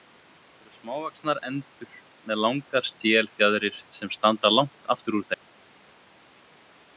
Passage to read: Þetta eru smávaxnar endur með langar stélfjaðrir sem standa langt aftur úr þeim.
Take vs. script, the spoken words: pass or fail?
pass